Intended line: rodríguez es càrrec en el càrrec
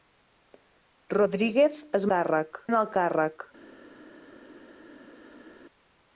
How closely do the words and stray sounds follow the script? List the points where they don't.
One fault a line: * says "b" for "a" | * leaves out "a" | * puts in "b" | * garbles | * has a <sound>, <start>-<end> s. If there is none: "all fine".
all fine